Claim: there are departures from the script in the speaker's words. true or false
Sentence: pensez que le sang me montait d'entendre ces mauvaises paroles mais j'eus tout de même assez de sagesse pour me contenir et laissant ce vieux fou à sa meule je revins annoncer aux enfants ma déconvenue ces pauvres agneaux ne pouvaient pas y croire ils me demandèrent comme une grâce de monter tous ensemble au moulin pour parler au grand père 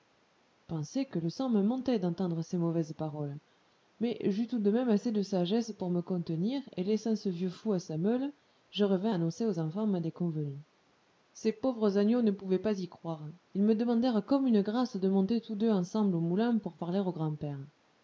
true